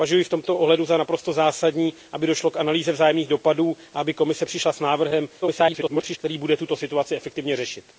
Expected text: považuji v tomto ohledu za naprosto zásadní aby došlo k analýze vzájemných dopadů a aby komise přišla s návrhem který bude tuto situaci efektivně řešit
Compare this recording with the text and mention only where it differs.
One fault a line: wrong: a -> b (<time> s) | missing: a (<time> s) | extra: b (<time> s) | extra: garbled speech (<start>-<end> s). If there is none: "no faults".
extra: garbled speech (5.4-6.2 s)